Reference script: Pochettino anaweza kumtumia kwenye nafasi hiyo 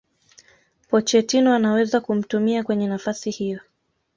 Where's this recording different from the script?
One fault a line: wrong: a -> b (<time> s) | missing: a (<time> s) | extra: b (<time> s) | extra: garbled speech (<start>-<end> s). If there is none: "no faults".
no faults